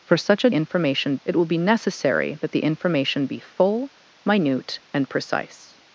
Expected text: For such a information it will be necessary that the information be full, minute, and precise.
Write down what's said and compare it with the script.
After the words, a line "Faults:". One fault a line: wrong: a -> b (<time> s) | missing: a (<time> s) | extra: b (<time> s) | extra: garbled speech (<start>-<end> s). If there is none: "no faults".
For such a information it will be necessary that the information be full, minute, and precise.
Faults:
no faults